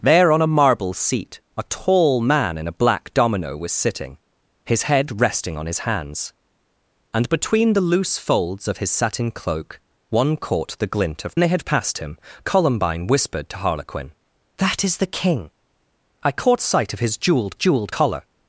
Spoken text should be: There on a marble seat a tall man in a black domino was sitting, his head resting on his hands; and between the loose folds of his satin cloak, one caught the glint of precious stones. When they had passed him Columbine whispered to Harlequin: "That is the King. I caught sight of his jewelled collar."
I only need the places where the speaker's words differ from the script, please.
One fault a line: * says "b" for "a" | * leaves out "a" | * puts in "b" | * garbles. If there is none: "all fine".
* leaves out "precious stones When"
* puts in "jewelled"